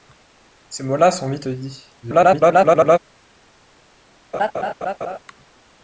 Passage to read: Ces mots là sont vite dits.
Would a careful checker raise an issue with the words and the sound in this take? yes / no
yes